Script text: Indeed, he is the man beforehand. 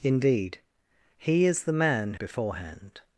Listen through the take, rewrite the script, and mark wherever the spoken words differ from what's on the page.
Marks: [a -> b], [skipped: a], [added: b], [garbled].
Indeed, he is the man beforehand.